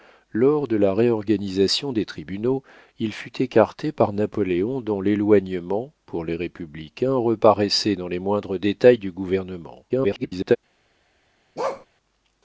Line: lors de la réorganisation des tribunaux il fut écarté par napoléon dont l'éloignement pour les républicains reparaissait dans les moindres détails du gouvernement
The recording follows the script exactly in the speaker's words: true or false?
false